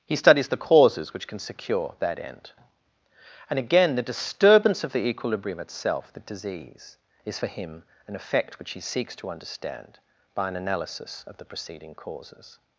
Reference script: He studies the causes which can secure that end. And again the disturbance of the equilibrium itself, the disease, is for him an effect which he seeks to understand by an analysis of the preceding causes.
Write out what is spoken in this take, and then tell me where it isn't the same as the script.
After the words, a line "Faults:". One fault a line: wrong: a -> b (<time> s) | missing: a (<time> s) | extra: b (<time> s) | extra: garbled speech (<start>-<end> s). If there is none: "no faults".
He studies the causes which can secure that end. And again the disturbance of the equilibrium itself, the disease, is for him an effect which he seeks to understand by an analysis of the preceding causes.
Faults:
no faults